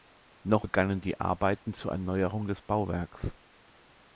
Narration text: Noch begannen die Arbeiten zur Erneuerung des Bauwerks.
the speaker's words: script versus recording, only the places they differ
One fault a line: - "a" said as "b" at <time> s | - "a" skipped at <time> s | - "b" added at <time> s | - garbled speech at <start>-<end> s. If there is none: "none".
none